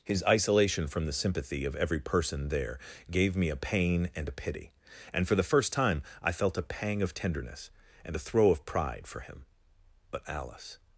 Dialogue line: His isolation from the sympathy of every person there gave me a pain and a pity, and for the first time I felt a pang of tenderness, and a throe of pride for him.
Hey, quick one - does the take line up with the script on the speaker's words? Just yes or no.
no